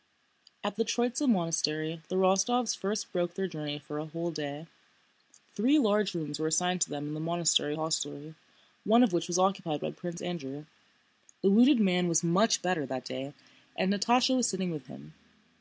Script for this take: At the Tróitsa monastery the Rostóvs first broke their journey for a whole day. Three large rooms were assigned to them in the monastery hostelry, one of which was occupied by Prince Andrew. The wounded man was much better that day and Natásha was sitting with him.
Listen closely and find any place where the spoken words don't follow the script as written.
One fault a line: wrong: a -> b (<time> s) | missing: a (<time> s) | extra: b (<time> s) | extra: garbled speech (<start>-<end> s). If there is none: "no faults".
no faults